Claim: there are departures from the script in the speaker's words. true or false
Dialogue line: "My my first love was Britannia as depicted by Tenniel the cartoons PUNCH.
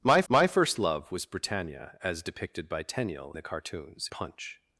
false